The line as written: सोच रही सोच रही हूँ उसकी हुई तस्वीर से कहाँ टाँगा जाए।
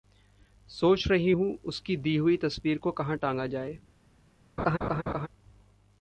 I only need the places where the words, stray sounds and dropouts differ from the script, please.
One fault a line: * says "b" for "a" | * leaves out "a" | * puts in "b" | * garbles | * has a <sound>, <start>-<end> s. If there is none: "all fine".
* leaves out "सोच रही"
* puts in "दी"
* says "को" for "से"
* has a laugh, 4.6-5.3 s